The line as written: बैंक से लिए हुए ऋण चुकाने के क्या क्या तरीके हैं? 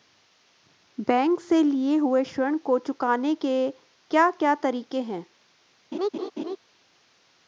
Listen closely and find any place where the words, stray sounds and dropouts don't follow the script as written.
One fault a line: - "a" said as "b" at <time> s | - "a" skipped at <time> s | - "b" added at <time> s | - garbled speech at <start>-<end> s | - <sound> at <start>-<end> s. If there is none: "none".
- "को" added at 2.6 s
- laugh at 5.9-6.6 s